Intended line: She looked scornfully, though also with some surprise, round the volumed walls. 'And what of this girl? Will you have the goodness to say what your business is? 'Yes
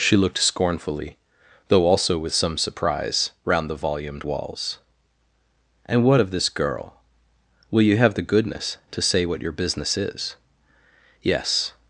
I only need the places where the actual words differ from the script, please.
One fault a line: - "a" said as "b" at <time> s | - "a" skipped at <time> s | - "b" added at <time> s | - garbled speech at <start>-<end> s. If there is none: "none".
none